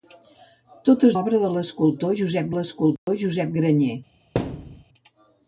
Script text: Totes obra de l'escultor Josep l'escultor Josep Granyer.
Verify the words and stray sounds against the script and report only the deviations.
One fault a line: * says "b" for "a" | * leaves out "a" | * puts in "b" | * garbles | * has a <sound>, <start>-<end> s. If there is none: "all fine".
* has a dropout, 3.0-3.1 s
* has a thud, 4.3-4.8 s